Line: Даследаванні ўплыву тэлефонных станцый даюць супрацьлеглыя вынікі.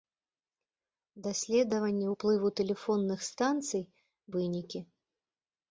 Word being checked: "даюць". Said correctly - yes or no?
no